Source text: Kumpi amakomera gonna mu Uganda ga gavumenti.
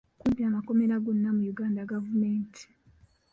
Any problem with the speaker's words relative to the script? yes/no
yes